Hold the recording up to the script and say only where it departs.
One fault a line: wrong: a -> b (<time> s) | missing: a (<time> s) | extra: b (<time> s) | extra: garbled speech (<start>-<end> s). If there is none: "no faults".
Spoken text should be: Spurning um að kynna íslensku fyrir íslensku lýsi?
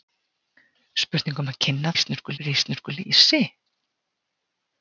no faults